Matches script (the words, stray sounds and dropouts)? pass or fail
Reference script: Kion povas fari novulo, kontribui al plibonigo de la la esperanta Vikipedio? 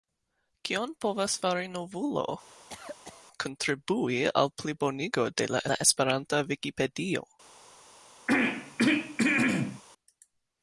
fail